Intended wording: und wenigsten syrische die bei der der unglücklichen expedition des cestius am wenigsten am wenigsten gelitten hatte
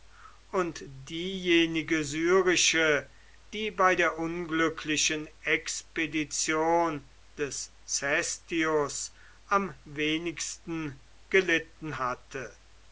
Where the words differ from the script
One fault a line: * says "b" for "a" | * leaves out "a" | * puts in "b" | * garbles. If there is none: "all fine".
* says "diejenige" for "wenigsten"
* leaves out "der"
* leaves out "am wenigsten"